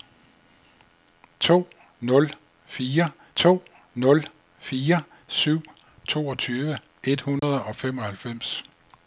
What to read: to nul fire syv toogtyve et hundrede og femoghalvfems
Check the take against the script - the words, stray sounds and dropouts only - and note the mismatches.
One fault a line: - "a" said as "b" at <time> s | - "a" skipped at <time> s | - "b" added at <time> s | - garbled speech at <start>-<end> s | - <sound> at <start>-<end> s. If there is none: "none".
- "to nul fire" added at 3.3 s
- dropout at 7.4-7.4 s